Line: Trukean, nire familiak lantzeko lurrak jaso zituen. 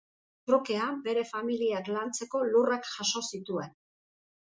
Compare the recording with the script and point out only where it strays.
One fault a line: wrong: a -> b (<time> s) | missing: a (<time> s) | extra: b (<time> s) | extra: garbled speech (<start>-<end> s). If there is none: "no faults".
wrong: nire -> bere (1.1 s)